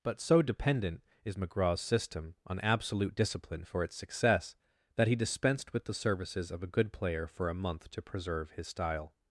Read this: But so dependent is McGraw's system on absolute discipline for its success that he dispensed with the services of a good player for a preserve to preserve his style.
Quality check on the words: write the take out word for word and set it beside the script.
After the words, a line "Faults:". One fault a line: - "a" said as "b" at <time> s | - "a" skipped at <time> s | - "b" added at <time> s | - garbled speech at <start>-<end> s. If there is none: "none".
But so dependent is McGraw's system on absolute discipline for its success that he dispensed with the services of a good player for a month to preserve his style.
Faults:
- "preserve" said as "month" at 7.5 s